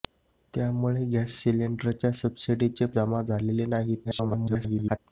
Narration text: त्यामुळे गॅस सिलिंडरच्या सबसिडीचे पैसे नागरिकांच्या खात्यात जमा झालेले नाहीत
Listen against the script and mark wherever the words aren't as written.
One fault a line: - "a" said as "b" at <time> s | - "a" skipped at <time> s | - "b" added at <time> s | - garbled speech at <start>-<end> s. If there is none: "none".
- "पैसे नागरिकांच्या खात्यात" skipped at 2.9 s
- garbled speech at 4.0-5.0 s